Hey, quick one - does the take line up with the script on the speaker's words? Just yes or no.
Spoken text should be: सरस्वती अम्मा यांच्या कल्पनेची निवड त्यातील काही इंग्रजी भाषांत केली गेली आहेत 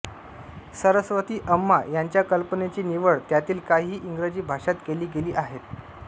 yes